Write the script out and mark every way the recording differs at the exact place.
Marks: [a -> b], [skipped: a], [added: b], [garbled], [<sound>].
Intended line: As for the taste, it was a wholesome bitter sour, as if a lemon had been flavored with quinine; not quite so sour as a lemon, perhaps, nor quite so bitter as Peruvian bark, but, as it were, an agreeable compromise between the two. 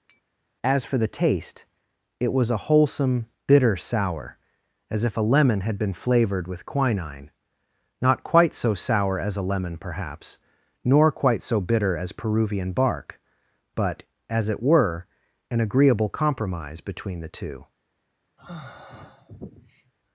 [tap] As for the taste, it was a wholesome bitter sour, as if a lemon had been flavored with quinine; not quite so sour as a lemon, perhaps, nor quite so bitter as Peruvian bark, but, as it were, an agreeable compromise between the two. [sigh]